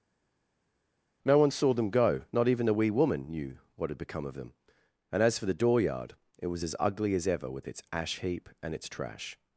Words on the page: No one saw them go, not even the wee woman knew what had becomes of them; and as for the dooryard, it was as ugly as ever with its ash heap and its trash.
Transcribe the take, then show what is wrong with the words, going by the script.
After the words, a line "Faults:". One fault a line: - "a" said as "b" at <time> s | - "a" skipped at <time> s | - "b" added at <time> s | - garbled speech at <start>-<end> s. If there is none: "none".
No one saw them go, not even the wee woman knew what had become of them; and as for the dooryard, it was as ugly as ever with its ash heap and its trash.
Faults:
- "becomes" said as "become" at 4.0 s